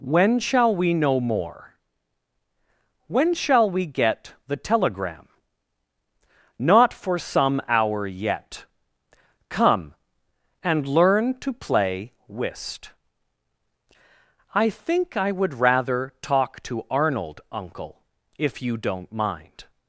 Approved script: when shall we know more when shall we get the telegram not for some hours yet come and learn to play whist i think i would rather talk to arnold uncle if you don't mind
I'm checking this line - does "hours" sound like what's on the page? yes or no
no